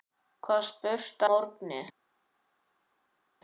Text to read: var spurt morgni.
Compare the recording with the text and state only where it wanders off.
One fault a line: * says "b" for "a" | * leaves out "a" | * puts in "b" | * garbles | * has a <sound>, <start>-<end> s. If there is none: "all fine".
all fine